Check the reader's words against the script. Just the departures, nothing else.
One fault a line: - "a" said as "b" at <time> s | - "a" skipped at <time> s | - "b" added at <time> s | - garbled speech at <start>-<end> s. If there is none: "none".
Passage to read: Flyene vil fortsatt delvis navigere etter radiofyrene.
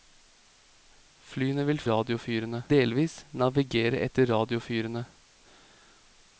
- "fortsatt" said as "radiofyrene" at 1.9 s